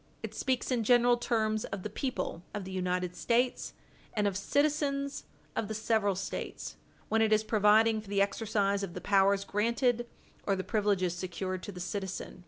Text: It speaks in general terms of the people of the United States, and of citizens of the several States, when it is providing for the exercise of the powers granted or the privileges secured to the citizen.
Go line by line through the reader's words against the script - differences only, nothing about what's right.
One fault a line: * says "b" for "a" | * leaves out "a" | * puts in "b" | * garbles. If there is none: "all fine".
all fine